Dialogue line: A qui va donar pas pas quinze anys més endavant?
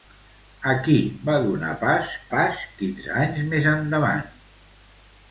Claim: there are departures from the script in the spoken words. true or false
false